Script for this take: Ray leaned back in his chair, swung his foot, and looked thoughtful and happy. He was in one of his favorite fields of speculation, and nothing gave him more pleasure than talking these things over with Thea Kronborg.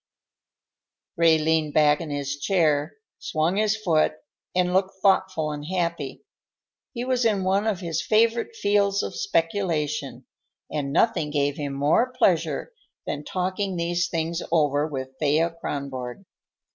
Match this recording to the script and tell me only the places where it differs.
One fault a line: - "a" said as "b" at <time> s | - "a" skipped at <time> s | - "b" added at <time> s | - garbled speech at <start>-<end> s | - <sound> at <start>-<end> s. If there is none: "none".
none